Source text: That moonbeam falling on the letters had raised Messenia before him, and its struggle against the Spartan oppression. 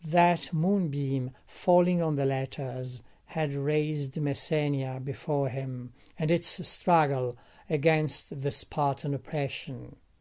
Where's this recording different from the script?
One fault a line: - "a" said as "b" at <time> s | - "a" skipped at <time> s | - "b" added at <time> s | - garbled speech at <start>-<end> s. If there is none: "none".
none